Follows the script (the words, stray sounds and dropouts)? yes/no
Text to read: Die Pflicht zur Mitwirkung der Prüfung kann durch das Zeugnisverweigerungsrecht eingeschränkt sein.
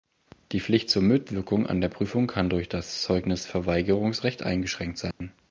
no